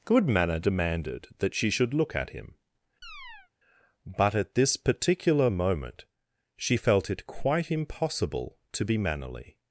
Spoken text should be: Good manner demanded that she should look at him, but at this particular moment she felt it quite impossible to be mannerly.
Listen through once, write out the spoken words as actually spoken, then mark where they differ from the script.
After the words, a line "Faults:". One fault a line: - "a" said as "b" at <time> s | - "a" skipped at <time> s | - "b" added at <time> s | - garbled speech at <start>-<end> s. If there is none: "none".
Good manner demanded that she should look at him, but at this particular moment she felt it quite impossible to be mannerly.
Faults:
none